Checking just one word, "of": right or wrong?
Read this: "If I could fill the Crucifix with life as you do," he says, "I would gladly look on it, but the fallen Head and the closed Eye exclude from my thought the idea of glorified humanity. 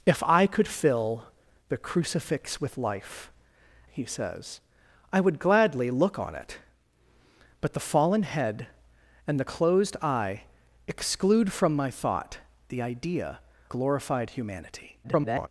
wrong